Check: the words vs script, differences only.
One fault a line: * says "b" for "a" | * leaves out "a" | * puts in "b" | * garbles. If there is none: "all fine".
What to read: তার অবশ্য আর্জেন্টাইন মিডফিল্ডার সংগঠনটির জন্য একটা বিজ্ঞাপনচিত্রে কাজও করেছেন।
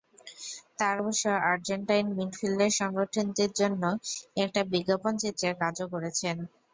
all fine